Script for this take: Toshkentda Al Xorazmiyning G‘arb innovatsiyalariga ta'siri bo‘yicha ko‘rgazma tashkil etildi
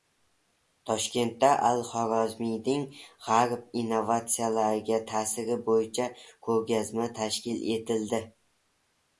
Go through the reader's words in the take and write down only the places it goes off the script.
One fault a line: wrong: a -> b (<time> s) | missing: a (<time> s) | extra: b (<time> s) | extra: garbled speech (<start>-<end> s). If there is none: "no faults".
no faults